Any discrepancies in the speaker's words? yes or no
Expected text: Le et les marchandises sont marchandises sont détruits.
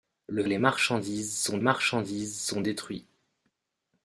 no